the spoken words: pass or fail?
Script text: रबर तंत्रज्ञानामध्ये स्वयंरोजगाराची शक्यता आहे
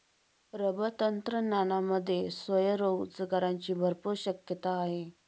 fail